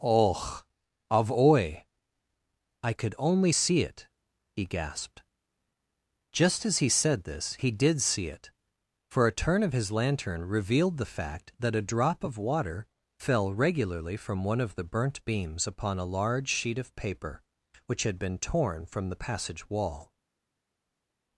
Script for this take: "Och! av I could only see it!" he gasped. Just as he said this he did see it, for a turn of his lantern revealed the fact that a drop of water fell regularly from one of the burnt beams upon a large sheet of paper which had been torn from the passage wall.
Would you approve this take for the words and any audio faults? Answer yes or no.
no